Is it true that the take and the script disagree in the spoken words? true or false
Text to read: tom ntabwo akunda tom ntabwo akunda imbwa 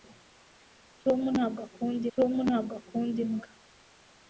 false